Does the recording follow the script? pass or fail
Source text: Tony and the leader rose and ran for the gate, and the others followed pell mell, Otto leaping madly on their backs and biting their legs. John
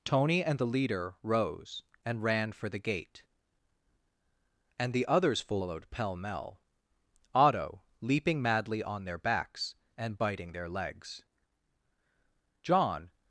pass